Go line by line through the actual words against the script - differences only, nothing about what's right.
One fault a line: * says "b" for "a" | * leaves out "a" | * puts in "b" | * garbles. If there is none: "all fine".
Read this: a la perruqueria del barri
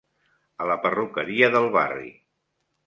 all fine